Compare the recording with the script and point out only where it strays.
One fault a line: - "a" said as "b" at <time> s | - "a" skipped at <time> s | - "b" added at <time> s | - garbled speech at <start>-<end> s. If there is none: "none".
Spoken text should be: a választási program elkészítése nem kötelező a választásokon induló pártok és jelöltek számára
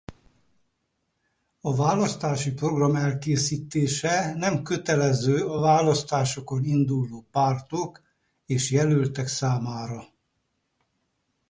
none